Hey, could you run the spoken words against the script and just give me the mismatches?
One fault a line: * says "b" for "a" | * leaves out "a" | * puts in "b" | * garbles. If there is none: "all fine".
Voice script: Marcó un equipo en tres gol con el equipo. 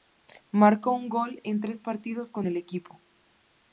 * says "gol" for "equipo"
* says "partidos" for "gol"